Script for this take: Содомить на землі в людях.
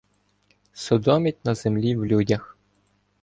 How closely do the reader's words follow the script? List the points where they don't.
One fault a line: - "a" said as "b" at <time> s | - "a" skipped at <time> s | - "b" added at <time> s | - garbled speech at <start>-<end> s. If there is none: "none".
none